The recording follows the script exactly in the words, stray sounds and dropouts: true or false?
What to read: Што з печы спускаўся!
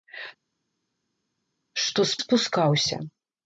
false